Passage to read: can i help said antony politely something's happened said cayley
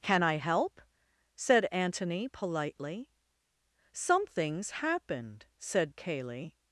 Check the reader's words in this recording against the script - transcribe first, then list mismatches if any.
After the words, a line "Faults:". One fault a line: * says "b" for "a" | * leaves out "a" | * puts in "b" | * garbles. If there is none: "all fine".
can i help said antony politely something's happened said cayley
Faults:
all fine